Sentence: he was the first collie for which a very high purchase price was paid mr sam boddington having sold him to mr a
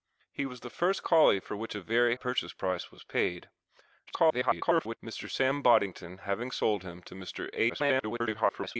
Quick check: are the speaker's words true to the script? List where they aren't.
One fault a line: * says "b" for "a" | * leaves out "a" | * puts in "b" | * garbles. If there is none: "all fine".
* leaves out "high"
* garbles
* garbles